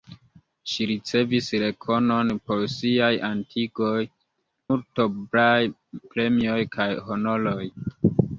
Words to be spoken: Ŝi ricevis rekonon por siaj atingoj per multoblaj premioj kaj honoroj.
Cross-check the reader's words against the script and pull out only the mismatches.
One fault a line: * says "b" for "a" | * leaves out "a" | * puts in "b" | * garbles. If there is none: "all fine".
* leaves out "per"